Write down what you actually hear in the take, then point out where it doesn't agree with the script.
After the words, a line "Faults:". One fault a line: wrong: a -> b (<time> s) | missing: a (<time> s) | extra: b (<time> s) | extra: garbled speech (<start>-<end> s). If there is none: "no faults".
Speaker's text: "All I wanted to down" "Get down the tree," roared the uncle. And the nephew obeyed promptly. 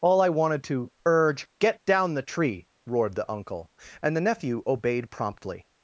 "All I wanted to urge" "Get down the tree," roared the uncle. And the nephew obeyed promptly.
Faults:
wrong: down -> urge (1.1 s)